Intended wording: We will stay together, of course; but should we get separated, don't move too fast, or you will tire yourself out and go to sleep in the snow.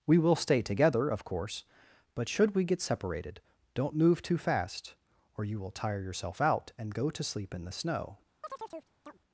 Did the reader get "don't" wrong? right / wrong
right